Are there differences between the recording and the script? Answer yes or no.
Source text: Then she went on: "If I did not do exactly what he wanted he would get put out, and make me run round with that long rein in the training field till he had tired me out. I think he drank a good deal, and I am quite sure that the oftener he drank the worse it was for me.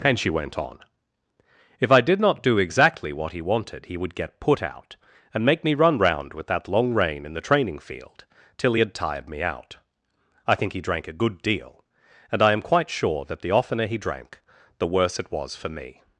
yes